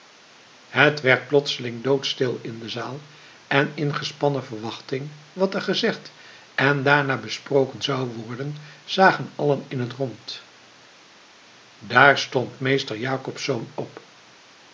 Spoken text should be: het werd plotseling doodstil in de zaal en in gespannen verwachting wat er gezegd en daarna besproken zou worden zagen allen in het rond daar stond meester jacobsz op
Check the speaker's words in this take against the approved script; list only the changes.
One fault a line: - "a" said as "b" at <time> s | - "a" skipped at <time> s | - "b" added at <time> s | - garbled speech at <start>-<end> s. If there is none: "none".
none